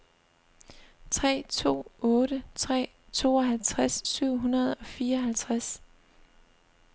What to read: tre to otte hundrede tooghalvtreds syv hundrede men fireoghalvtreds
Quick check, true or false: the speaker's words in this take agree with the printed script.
false